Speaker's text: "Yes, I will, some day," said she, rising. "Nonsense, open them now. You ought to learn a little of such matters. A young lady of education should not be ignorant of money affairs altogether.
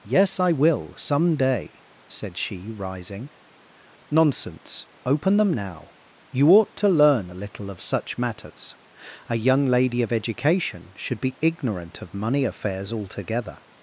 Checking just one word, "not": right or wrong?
wrong